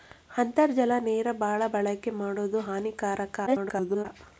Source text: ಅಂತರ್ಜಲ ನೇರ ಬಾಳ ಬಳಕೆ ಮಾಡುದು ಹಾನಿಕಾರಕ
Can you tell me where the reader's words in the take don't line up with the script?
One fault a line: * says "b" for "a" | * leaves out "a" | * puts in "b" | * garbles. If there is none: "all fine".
* garbles